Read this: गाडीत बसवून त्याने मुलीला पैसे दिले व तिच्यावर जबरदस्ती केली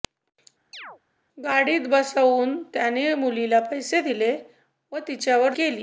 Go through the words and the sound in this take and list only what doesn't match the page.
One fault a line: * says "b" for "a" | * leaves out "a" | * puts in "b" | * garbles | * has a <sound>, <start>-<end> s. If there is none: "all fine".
* has a chirp, 0.7-1.0 s
* leaves out "जबरदस्ती"